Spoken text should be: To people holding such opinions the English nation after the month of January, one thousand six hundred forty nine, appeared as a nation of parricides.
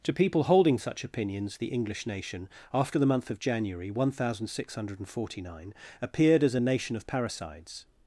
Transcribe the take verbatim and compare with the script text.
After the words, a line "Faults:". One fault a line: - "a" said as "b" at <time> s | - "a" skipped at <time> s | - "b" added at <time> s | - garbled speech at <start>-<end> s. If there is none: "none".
To people holding such opinions the English nation after the month of January, one thousand six hundred forty nine, appeared as a nation of parricides.
Faults:
none